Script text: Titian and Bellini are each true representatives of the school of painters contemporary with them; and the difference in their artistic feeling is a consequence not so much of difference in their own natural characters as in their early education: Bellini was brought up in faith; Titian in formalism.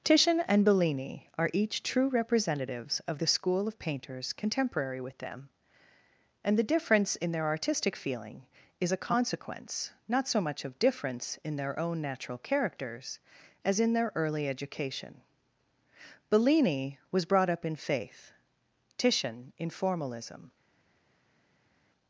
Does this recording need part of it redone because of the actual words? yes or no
no